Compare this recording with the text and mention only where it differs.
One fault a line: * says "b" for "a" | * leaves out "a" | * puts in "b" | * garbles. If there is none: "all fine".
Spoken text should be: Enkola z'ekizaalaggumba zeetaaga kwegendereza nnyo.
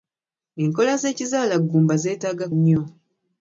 * leaves out "kwegendereza"